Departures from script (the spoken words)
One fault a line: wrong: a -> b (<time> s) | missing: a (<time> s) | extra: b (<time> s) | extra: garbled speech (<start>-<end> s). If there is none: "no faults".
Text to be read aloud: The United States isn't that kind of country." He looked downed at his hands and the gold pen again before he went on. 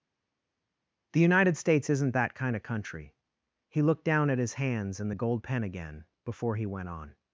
wrong: downed -> down (4.0 s)